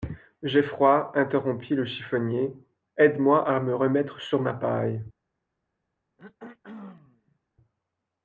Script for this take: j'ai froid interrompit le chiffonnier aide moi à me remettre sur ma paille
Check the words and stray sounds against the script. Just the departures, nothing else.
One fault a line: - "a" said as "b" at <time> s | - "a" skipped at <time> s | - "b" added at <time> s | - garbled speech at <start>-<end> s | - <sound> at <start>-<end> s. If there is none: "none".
- throat clearing at 6.2-7.4 s